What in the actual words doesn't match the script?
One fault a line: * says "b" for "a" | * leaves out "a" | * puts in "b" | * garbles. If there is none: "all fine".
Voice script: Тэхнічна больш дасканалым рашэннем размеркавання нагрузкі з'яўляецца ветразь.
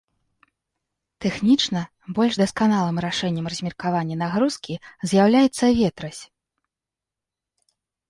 all fine